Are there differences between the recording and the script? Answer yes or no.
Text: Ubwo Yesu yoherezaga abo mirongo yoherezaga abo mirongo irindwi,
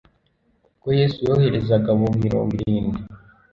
yes